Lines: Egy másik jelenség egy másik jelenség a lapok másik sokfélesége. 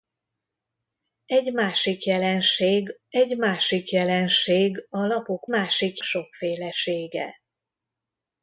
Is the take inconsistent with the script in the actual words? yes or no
no